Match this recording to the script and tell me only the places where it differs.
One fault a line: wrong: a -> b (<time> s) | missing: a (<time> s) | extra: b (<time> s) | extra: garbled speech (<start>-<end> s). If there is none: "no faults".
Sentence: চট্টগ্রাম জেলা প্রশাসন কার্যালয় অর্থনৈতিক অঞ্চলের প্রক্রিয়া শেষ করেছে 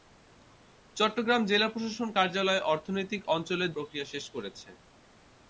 no faults